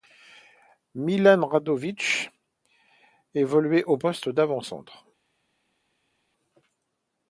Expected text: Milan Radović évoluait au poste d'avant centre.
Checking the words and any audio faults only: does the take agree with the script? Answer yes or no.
yes